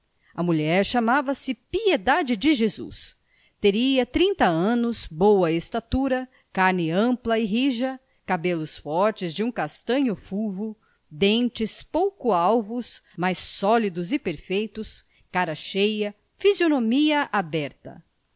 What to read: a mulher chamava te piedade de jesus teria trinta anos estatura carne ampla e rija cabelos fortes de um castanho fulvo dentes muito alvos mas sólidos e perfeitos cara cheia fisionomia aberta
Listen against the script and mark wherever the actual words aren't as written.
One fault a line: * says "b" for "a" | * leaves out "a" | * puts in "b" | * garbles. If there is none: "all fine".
* says "se" for "te"
* puts in "boa"
* says "pouco" for "muito"